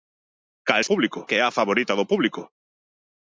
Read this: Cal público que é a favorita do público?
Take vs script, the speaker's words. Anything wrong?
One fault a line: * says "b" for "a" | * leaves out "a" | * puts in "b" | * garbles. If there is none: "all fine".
all fine